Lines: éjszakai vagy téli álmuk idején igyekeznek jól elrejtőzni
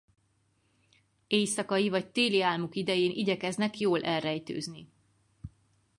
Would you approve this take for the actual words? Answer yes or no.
yes